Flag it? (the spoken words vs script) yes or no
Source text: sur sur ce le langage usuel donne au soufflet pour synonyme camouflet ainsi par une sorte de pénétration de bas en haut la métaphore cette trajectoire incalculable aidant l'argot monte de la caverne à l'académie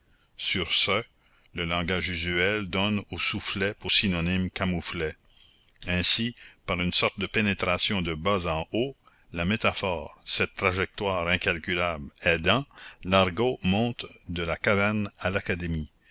yes